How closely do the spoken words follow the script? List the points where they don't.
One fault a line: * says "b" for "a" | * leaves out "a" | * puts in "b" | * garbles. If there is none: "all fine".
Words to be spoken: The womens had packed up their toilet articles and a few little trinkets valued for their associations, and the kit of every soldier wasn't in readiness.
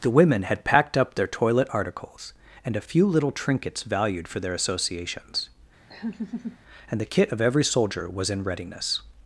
* says "women" for "womens"
* says "was" for "wasn't"